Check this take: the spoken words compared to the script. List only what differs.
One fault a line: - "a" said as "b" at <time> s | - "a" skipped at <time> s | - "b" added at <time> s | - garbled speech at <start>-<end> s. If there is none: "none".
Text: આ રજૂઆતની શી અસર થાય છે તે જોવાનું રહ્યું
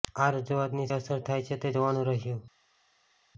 - "શી" skipped at 0.9 s